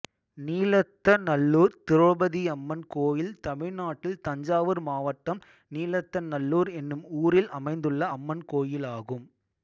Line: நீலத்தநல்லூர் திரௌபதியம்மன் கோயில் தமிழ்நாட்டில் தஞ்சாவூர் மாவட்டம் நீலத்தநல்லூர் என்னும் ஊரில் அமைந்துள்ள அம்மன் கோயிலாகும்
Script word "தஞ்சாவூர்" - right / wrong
right